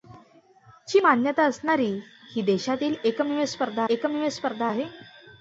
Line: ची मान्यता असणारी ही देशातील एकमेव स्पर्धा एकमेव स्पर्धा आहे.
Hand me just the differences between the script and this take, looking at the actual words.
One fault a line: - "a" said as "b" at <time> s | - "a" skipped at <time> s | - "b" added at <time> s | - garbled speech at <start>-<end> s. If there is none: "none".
none